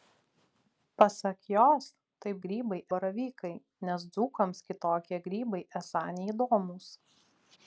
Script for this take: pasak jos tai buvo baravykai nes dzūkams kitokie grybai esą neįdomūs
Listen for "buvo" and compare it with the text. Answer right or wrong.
wrong